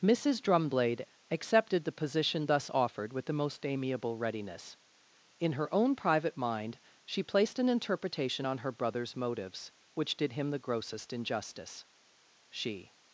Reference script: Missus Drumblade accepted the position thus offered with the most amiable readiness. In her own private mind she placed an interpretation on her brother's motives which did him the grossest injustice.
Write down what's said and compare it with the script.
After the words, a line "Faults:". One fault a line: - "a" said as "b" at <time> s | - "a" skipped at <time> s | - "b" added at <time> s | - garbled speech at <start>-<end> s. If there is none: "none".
Missus Drumblade accepted the position thus offered with the most amiable readiness. In her own private mind she placed an interpretation on her brother's motives which did him the grossest injustice. She
Faults:
- "She" added at 12.5 s